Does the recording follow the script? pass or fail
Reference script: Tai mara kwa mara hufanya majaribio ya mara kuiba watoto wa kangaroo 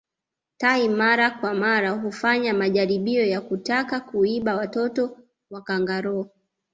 fail